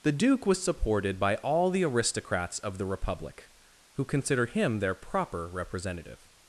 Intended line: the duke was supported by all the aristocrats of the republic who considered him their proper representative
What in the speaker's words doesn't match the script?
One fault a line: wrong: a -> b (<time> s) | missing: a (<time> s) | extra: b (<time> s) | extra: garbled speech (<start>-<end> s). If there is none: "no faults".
wrong: considered -> consider (4.1 s)